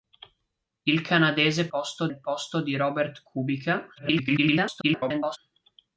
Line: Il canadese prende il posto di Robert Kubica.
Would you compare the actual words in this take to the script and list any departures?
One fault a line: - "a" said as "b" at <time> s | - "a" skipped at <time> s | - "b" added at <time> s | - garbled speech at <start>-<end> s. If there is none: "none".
- "prende" said as "posto" at 1.7 s
- garbled speech at 4.0-5.4 s